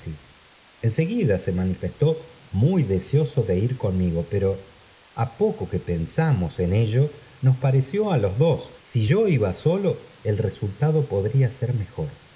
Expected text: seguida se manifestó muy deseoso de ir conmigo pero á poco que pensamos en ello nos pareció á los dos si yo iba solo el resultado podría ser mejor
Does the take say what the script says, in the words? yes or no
yes